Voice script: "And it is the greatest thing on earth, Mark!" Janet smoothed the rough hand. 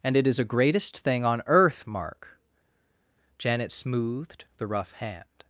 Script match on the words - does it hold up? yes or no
no